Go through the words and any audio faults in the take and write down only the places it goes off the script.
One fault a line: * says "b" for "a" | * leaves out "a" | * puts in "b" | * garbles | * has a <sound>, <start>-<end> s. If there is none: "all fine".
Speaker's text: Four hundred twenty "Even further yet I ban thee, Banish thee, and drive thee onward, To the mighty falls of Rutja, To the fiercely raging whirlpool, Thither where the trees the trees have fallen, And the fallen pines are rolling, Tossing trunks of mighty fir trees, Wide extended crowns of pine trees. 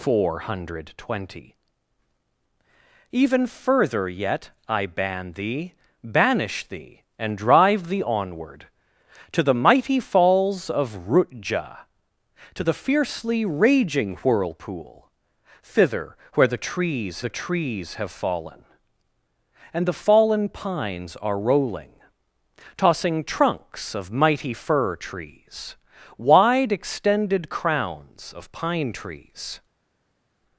all fine